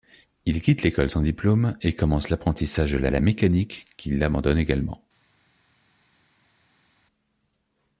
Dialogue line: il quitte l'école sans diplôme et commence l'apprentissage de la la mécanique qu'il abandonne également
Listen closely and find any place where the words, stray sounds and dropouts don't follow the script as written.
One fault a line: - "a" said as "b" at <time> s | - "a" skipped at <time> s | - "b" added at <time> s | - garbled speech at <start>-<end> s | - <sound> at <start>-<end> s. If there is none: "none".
none